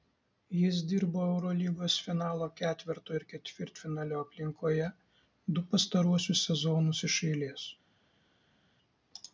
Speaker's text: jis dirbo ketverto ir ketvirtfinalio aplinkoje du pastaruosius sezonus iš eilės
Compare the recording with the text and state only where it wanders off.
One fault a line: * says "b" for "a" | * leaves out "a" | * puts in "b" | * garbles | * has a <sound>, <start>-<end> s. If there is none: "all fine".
* puts in "eurolygos finalo"